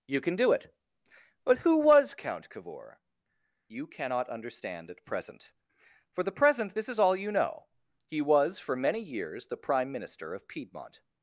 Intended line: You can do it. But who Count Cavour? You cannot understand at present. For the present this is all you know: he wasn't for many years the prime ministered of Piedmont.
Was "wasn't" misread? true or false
true